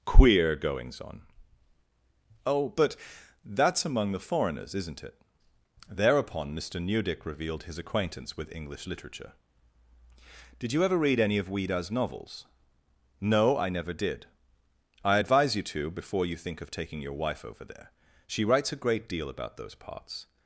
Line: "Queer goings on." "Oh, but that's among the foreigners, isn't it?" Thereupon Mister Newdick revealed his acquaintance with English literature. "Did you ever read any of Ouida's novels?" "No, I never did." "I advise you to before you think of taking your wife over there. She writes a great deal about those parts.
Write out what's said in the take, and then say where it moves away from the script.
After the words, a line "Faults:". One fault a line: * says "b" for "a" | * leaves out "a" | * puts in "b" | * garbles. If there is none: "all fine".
"Queer goings on." "Oh, but that's among the foreigners, isn't it?" Thereupon Mister Newdick revealed his acquaintance with English literature. "Did you ever read any of Ouida's novels?" "No, I never did." "I advise you to before you think of taking your wife over there. She writes a great deal about those parts.
Faults:
all fine